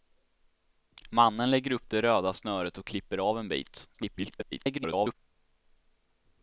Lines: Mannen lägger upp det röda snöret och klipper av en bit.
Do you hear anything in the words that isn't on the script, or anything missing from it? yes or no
yes